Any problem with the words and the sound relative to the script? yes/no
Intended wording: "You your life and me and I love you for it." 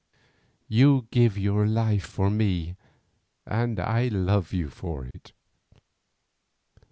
yes